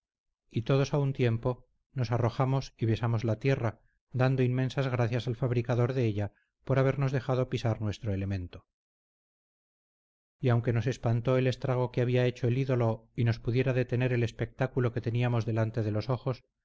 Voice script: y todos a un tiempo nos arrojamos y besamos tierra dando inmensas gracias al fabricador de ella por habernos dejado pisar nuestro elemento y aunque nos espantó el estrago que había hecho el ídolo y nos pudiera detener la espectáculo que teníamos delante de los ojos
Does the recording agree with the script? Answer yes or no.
no